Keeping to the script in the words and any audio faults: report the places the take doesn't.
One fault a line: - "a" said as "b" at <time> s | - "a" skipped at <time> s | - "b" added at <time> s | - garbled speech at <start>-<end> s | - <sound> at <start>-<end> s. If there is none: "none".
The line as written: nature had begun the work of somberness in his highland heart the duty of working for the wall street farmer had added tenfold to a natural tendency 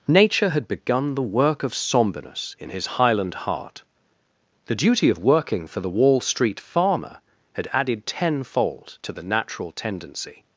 - "a" said as "the" at 9.1 s